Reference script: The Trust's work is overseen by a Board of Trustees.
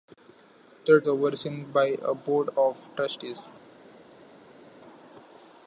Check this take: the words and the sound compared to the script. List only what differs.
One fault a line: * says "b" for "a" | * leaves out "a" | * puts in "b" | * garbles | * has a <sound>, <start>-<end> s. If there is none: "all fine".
* leaves out "Trust's work is"